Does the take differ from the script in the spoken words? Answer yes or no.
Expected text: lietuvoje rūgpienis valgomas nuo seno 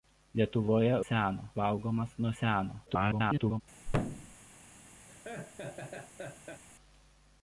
yes